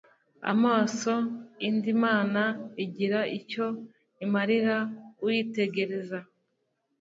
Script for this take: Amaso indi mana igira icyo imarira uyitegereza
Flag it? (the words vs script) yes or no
no